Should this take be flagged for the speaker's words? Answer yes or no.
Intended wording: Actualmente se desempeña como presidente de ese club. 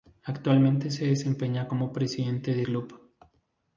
yes